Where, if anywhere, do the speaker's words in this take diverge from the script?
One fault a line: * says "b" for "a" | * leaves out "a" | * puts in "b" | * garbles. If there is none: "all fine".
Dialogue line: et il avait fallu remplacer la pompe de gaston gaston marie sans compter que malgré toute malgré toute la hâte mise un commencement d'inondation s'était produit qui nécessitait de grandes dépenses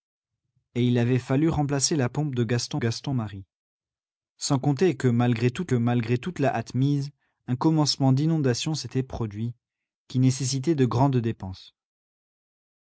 all fine